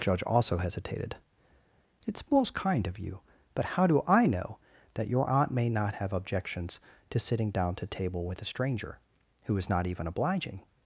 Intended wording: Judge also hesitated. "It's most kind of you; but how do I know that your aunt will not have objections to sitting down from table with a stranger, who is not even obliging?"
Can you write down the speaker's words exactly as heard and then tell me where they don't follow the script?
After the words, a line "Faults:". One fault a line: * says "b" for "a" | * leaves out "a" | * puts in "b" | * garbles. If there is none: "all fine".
Judge also hesitated. "It's most kind of you; but how do I know that your aunt may not have objections to sitting down to table with a stranger, who is not even obliging?"
Faults:
* says "may" for "will"
* says "to" for "from"